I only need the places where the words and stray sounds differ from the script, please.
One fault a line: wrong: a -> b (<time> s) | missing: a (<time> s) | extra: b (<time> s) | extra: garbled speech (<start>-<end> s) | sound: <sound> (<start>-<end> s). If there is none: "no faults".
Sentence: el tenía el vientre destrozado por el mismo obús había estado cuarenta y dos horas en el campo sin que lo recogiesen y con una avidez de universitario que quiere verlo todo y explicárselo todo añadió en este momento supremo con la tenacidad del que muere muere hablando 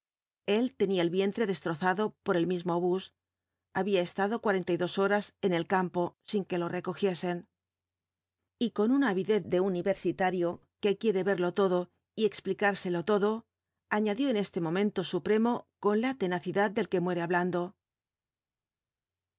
missing: muere (17.2 s)